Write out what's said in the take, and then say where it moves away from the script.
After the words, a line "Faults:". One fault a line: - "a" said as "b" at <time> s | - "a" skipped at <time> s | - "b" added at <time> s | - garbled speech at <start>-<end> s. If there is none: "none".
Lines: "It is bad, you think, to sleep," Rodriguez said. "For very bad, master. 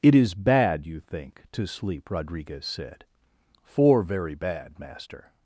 "It is bad, you think, to sleep," Rodriguez said. "For very bad, master.
Faults:
none